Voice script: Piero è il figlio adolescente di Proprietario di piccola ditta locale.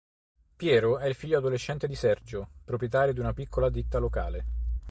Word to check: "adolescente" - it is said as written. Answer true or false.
true